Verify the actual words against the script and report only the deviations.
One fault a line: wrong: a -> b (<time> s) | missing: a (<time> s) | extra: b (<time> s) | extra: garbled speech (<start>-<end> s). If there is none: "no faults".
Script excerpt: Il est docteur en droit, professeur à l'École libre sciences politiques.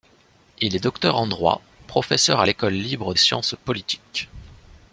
no faults